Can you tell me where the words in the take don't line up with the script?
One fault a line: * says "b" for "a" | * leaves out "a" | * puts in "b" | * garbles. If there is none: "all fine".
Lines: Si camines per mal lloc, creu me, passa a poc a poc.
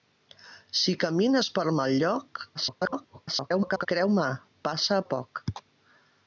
* garbles
* leaves out "poc"